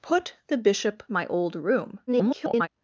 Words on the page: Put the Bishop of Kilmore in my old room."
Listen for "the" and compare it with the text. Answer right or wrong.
right